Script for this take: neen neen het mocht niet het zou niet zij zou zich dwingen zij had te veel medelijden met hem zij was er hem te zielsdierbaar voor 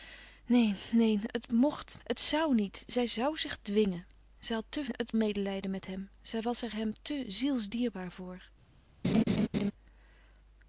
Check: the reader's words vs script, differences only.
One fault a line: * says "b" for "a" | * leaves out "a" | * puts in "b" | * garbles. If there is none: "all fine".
* leaves out "niet"
* says "het" for "veel"